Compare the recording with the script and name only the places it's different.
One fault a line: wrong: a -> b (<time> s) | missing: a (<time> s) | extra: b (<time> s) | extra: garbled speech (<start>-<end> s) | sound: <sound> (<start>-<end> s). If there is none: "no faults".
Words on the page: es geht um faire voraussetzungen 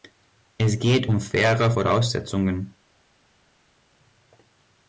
no faults